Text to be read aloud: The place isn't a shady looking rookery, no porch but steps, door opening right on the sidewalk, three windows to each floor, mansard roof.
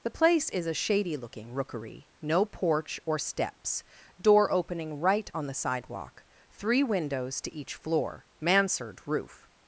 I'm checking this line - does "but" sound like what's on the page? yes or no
no